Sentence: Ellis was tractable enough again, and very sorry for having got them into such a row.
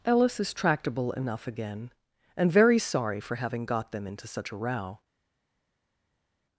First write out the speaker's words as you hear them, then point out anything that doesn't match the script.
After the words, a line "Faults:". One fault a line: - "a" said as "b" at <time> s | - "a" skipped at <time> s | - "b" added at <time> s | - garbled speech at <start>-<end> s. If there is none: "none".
Ellis is tractable enough again, and very sorry for having got them into such a row.
Faults:
- "was" said as "is" at 0.4 s